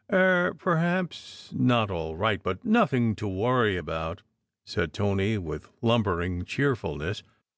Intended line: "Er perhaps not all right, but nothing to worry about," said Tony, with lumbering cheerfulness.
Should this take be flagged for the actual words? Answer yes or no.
no